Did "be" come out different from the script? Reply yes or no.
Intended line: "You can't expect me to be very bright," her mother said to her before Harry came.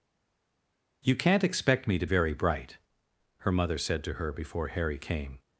yes